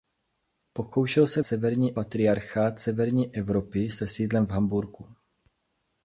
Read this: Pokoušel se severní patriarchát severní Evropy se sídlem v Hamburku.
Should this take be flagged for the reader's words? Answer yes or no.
no